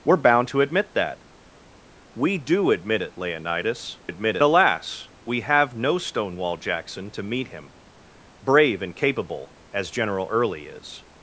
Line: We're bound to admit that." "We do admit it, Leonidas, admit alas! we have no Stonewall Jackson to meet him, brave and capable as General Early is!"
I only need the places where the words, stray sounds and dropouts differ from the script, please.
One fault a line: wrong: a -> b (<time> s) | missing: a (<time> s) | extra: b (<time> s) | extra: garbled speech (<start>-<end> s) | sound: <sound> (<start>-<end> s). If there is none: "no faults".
no faults